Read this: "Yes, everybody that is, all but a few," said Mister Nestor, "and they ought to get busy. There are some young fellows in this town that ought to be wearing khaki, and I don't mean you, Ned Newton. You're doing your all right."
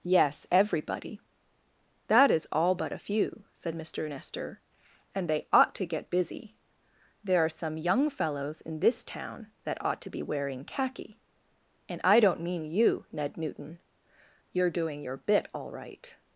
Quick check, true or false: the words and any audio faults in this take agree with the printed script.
false